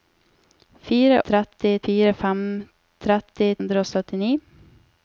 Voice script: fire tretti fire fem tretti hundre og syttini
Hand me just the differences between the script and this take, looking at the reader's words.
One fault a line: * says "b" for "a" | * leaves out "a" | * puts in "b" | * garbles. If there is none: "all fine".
all fine